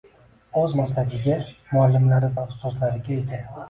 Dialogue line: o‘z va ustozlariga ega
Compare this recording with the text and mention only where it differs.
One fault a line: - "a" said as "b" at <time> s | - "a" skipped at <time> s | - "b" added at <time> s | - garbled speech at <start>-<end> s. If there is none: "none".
- "maslagiga muallimlari" added at 0.8 s